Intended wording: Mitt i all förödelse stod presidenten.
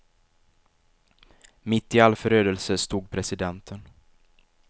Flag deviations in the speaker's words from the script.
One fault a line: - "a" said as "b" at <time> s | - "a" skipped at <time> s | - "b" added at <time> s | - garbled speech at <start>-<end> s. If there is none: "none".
none